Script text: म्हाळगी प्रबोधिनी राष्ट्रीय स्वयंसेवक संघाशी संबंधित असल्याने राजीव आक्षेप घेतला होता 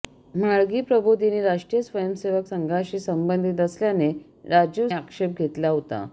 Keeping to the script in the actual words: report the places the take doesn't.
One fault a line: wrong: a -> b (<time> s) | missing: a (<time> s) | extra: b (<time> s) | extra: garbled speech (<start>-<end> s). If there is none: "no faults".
no faults